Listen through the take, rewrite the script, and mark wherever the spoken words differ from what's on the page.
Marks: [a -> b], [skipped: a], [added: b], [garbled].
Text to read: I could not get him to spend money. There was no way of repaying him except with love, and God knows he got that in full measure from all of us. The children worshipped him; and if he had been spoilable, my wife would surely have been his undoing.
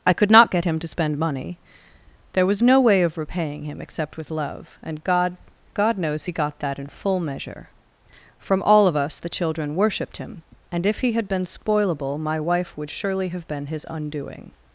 I could not get him to spend money. There was no way of repaying him except with love, and God [added: God] knows he got that in full measure from all of us. The children worshipped him; and if he had been spoilable, my wife would surely have been his undoing.